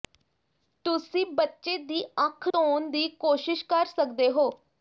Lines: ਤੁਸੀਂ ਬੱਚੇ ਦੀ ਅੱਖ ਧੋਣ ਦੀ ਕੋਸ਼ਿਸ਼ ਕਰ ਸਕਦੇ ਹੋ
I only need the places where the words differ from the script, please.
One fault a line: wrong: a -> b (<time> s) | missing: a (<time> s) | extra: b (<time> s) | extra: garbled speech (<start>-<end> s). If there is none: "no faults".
no faults